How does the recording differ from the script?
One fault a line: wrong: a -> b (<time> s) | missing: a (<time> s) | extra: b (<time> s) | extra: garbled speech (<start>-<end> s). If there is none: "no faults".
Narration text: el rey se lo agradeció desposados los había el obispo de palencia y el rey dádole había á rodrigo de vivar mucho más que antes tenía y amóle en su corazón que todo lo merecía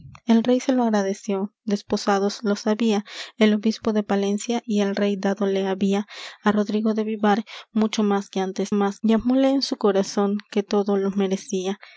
wrong: tenía -> más (8.7 s)